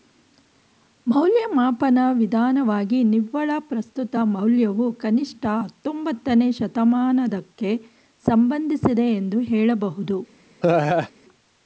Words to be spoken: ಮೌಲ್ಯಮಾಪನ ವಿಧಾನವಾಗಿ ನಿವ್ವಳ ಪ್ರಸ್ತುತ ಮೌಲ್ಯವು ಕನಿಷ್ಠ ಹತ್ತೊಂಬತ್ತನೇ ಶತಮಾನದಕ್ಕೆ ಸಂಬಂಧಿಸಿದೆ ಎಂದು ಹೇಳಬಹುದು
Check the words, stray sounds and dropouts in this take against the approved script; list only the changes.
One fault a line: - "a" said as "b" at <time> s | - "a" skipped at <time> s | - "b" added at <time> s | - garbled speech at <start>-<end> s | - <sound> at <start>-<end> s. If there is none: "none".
- laugh at 10.6-11.1 s